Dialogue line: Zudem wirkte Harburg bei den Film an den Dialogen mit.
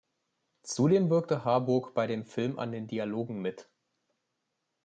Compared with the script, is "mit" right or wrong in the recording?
right